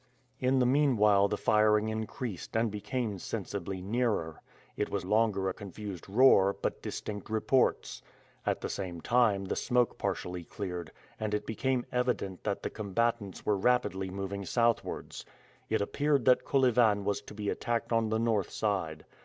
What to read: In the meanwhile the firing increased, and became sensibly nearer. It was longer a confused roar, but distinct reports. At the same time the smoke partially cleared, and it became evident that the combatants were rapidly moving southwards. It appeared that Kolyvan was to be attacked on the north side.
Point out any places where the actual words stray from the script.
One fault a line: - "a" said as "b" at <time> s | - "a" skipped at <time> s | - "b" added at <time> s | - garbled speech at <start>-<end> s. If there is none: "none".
none